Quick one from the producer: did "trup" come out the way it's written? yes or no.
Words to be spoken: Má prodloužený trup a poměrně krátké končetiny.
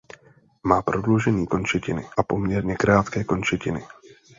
no